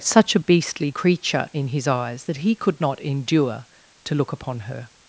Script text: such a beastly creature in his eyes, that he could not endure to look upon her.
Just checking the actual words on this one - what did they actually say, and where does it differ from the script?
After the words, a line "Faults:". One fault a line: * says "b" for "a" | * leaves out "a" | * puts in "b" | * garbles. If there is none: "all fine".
such a beastly creature in his eyes, that he could not endure to look upon her.
Faults:
all fine